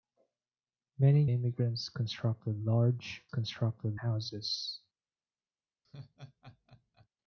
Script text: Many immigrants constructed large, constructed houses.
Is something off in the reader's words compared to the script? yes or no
no